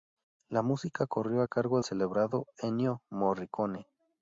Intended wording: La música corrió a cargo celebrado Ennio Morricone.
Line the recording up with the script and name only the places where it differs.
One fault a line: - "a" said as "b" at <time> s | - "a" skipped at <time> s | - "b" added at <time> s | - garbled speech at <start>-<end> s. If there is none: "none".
none